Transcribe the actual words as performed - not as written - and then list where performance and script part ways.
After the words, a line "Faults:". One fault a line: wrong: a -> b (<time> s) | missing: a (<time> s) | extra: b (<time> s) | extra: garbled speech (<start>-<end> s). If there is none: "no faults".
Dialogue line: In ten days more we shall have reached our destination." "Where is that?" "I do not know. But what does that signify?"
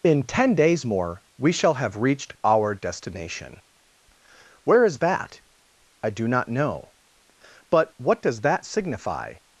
In ten days more we shall have reached our destination." "Where is that?" "I do not know. But what does that signify?"
Faults:
no faults